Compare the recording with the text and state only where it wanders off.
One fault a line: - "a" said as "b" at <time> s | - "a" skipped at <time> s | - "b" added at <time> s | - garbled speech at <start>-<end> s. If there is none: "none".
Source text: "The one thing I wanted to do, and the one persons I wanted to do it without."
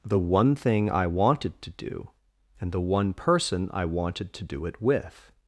- "persons" said as "person" at 3.1 s
- "without" said as "with" at 4.8 s